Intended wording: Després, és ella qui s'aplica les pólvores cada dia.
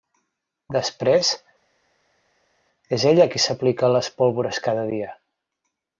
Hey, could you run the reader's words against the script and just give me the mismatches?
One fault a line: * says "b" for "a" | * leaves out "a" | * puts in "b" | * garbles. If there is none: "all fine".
all fine